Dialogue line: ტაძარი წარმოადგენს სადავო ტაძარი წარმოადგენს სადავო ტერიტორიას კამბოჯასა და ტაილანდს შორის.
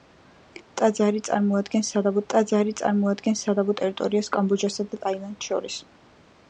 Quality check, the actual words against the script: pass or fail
pass